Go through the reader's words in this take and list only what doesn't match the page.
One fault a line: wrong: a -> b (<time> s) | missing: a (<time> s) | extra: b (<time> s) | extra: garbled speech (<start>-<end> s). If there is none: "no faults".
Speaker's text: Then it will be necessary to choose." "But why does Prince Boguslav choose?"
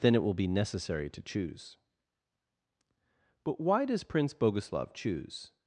no faults